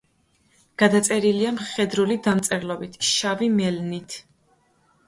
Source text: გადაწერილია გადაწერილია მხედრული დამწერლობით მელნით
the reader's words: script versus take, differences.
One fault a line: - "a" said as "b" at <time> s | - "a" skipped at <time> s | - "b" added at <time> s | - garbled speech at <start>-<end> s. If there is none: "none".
- "გადაწერილია" skipped at 1.5 s
- "შავი" added at 3.1 s